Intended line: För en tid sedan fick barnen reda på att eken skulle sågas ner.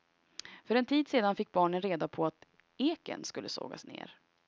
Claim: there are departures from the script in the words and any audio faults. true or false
false